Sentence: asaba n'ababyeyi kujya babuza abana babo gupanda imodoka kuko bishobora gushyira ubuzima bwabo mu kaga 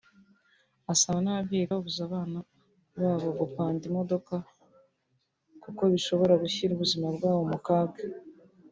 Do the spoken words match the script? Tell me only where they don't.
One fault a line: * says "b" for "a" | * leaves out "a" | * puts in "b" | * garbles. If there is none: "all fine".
* leaves out "kujya"